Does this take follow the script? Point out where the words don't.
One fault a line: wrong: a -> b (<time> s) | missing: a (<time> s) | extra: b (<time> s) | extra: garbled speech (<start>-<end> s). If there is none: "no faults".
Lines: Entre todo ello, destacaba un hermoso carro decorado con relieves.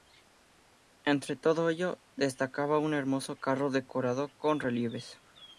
no faults